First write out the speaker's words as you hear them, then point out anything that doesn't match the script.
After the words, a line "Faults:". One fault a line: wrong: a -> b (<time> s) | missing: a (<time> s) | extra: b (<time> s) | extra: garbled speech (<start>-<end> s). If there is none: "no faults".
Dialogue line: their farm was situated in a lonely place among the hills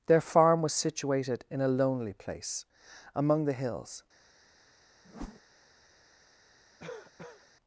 their farm was situated in a lonely place among the hills
Faults:
no faults